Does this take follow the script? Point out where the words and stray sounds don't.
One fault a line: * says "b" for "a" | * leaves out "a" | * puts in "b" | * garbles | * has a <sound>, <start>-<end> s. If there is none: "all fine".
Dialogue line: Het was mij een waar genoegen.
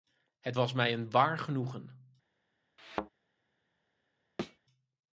* has a thud, 2.8-3.1 s
* has a thud, 4.4-4.6 s